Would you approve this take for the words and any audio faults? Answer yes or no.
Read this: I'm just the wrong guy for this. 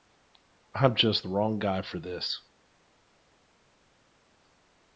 yes